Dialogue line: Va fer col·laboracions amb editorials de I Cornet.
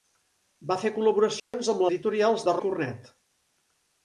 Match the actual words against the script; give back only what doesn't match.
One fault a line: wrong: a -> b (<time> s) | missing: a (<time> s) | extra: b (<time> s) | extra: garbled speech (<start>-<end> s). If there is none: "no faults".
no faults